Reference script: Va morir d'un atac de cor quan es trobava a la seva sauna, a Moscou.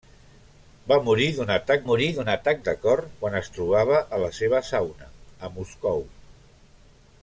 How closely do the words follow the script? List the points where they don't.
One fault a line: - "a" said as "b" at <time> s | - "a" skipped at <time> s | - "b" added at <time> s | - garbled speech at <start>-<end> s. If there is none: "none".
- "morir d'un atac" added at 1.9 s